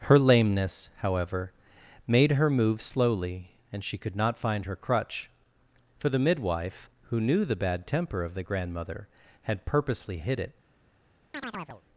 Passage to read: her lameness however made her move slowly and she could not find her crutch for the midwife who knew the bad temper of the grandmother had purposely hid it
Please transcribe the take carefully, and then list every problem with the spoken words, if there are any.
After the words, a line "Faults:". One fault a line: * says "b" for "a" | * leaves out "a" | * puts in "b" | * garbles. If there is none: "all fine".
her lameness however made her move slowly and she could not find her crutch for the midwife who knew the bad temper of the grandmother had purposely hid it
Faults:
all fine